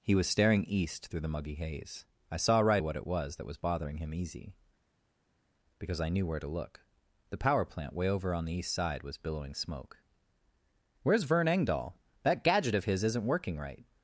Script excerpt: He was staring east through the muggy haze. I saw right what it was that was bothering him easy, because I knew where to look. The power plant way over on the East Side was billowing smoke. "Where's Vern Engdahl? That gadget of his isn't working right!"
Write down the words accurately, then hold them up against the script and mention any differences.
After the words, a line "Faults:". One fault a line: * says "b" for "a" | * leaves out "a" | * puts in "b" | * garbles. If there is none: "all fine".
He was staring east through the muggy haze. I saw right what it was that was bothering him easy, because I knew where to look. The power plant way over on the East Side was billowing smoke. "Where's Vern Engdahl? That gadget of his isn't working right!"
Faults:
all fine